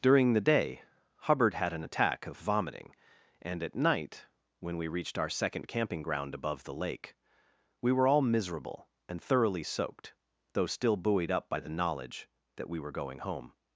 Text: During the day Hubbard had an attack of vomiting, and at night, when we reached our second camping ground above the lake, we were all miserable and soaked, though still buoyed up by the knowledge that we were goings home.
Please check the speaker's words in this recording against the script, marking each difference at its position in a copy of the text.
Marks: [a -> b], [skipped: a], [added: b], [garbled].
During the day Hubbard had an attack of vomiting, and at night, when we reached our second camping ground above the lake, we were all miserable and [added: thoroughly] soaked, though still buoyed up by the knowledge that we were [goings -> going] home.